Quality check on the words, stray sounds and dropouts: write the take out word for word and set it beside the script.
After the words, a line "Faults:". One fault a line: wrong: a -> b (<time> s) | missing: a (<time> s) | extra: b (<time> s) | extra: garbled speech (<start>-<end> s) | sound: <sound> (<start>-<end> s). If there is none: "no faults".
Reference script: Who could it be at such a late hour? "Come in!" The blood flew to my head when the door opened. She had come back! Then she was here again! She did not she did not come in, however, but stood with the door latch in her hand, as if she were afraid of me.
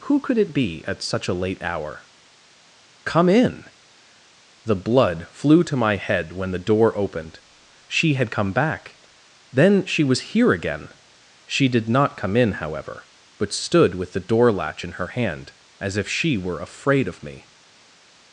Who could it be at such a late hour? "Come in!" The blood flew to my head when the door opened. She had come back! Then she was here again! She did not come in, however, but stood with the door latch in her hand, as if she were afraid of me.
Faults:
missing: she did not (12.2 s)